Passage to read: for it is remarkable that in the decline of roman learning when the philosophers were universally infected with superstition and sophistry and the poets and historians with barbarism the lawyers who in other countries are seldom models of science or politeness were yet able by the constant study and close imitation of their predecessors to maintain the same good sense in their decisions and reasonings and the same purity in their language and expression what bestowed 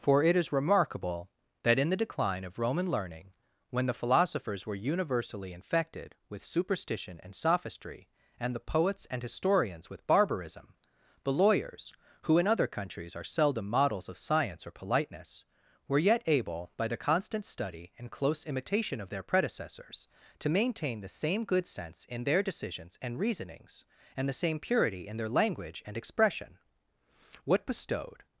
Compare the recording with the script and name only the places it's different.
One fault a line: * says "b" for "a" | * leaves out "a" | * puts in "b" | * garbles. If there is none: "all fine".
all fine